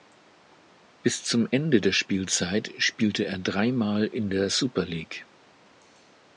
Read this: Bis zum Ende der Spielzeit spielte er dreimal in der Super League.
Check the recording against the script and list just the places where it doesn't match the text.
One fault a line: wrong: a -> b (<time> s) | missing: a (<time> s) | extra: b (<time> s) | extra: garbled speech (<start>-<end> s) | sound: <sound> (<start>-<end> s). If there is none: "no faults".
no faults